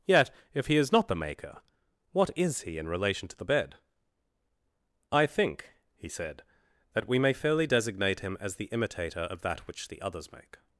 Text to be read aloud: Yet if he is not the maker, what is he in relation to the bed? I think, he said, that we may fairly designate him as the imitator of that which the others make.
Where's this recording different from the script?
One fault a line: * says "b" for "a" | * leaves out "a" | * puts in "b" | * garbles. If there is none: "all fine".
all fine